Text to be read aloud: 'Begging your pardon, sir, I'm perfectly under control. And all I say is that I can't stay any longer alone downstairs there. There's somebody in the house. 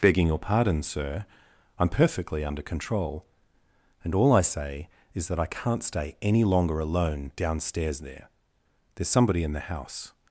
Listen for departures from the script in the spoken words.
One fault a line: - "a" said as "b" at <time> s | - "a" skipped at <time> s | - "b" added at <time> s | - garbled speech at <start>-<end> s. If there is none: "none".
none